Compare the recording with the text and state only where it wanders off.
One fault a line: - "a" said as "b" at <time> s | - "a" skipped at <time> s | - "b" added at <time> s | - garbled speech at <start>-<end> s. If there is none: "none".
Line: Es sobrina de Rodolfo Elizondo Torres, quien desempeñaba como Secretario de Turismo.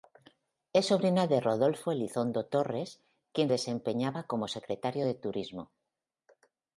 none